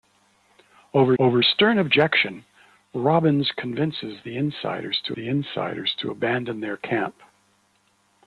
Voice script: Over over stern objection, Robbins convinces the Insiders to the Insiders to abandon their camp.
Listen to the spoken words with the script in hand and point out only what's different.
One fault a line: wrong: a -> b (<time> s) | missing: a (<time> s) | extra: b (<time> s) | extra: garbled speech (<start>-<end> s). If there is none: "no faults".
no faults